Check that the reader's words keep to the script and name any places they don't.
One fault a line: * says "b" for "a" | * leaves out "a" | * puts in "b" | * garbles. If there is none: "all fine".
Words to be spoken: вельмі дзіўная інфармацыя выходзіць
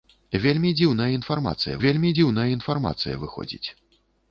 * puts in "вельмі дзіўная інфармацыя"